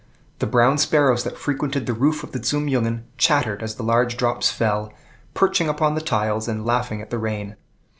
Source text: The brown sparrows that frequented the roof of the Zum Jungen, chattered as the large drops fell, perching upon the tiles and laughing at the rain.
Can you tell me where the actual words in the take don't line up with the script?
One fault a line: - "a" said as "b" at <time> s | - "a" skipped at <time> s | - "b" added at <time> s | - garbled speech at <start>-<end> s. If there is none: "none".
none